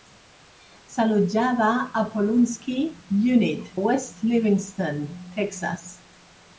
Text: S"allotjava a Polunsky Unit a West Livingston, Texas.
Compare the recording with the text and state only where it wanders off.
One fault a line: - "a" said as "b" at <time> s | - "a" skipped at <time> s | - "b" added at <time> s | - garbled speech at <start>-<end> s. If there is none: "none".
- "a" skipped at 3.7 s